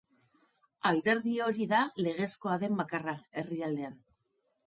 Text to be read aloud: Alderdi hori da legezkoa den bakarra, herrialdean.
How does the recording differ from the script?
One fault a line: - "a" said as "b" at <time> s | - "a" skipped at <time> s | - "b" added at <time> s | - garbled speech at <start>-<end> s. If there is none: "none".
none